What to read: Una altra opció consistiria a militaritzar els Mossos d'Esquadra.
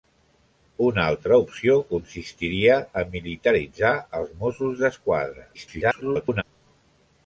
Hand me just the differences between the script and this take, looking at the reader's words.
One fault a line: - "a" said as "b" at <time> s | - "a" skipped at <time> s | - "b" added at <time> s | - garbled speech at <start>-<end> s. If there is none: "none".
- garbled speech at 5.5-6.4 s